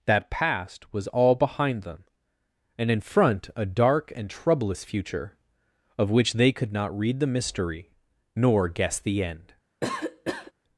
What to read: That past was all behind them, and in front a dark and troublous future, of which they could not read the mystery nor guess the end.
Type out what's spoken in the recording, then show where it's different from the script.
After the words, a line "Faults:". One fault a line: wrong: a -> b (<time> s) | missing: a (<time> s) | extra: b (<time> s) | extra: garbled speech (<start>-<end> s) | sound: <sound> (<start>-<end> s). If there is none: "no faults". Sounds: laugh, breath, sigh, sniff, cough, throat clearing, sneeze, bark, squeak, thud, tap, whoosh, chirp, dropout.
That past was all behind them, and in front a dark and troublous future, of which they could not read the mystery nor guess the end.
Faults:
sound: cough (9.8-10.5 s)